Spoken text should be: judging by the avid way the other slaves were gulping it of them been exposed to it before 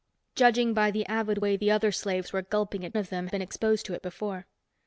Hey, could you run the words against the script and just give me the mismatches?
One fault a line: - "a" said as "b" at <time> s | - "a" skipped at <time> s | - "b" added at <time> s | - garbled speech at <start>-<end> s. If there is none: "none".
none